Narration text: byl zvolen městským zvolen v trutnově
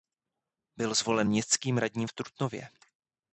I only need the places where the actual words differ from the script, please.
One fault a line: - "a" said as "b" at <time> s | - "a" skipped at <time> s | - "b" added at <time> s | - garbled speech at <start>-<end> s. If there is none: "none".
- "zvolen" said as "radním" at 1.8 s